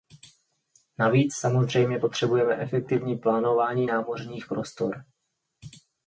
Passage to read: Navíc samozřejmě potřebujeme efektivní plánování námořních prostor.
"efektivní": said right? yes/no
yes